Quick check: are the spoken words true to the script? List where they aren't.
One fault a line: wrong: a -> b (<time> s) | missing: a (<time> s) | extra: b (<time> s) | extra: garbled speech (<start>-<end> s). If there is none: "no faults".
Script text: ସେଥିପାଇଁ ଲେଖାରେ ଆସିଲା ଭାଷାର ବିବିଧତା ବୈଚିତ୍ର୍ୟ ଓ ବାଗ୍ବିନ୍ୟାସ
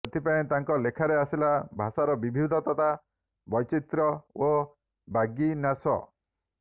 extra: ତାଙ୍କ (0.5 s)